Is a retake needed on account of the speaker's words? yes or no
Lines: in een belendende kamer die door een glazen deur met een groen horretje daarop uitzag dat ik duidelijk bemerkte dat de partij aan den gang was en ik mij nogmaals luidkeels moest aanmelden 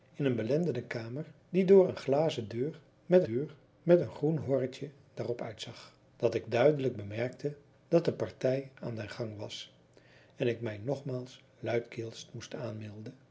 yes